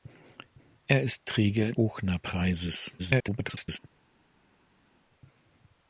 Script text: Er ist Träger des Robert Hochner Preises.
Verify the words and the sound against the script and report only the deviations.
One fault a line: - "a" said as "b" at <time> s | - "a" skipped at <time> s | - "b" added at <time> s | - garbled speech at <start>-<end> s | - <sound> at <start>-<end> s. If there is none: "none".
- "des Robert" skipped at 1.7 s
- garbled speech at 3.0-3.8 s